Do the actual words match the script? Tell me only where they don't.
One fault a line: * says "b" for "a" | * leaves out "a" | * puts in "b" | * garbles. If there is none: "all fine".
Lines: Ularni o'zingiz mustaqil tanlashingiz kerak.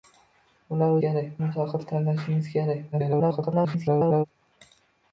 * says "kerak" for "o'zingiz"
* garbles